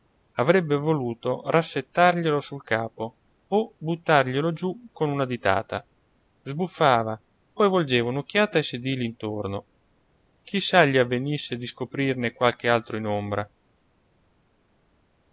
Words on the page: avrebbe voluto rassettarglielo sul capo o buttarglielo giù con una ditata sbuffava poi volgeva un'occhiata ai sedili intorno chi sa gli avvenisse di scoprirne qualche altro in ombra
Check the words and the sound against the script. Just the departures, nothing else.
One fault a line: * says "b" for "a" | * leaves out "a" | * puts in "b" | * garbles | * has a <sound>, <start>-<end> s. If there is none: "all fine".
all fine